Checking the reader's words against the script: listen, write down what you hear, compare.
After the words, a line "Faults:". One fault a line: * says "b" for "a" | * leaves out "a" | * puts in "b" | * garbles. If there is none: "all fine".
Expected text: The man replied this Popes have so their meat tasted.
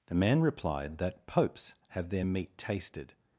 The man replied that Popes have their meat tasted.
Faults:
* says "that" for "this"
* leaves out "so"